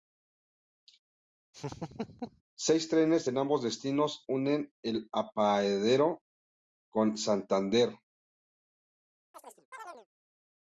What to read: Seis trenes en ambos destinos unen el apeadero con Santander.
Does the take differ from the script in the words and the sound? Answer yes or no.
yes